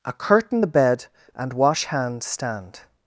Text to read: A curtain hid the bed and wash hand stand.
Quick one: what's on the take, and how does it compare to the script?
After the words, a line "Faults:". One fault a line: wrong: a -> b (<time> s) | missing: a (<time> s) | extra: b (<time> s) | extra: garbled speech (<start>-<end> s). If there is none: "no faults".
A curtain the bed and wash hand stand.
Faults:
missing: hid (0.6 s)